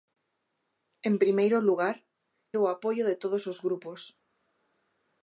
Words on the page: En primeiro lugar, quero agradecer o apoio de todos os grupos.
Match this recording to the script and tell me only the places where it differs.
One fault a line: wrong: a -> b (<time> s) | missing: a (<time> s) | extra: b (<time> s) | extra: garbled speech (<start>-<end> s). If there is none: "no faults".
missing: quero agradecer (1.9 s)